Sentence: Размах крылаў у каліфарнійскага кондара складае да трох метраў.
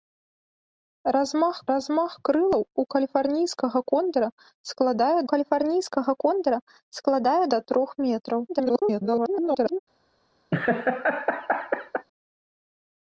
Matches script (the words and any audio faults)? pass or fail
fail